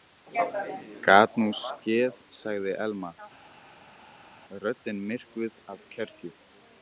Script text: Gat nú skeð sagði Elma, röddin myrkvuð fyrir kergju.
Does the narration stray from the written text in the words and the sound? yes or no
yes